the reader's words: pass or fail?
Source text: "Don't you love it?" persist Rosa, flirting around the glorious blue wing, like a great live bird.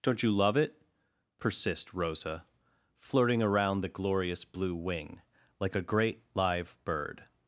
pass